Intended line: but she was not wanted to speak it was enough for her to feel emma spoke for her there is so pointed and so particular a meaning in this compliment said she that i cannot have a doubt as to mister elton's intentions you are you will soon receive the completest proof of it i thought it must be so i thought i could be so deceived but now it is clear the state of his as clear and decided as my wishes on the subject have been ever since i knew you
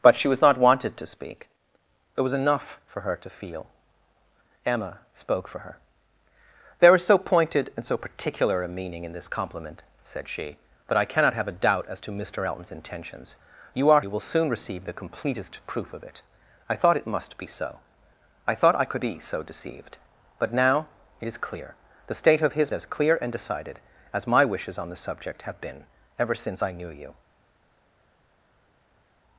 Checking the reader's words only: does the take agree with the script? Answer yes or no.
yes